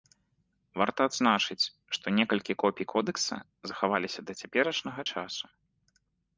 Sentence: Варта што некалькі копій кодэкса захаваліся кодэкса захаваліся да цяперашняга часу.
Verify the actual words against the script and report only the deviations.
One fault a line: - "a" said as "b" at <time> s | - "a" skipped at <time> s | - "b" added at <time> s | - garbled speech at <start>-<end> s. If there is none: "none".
- "адзначыць" added at 1.1 s
- "кодэкса захаваліся" skipped at 4.2 s